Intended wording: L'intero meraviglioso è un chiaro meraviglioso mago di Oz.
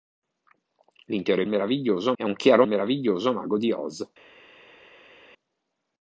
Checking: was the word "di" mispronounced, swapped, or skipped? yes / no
no